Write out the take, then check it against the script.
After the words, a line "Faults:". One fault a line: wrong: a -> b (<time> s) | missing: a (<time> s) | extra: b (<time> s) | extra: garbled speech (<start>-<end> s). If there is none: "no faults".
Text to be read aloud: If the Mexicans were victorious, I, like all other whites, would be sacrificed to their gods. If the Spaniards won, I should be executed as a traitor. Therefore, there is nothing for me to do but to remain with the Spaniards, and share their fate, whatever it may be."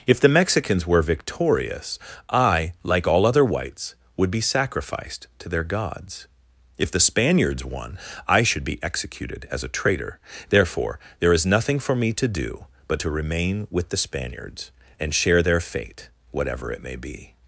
If the Mexicans were victorious, I, like all other whites, would be sacrificed to their gods. If the Spaniards won, I should be executed as a traitor. Therefore, there is nothing for me to do but to remain with the Spaniards, and share their fate, whatever it may be."
Faults:
no faults